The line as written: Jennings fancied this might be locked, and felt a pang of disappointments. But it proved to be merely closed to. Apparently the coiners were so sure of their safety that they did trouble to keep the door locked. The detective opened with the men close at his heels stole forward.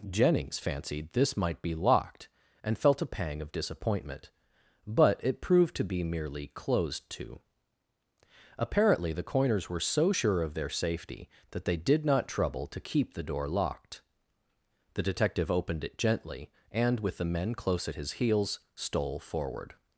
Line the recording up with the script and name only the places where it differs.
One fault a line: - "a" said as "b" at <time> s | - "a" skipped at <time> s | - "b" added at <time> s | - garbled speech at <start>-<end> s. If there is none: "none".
- "disappointments" said as "disappointment" at 3.5 s
- "not" added at 12.0 s
- "it gently and" added at 15.8 s